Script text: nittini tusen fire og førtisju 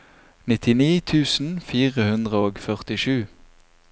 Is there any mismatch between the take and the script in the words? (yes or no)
yes